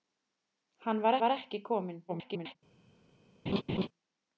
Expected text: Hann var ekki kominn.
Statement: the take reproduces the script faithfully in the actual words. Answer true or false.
false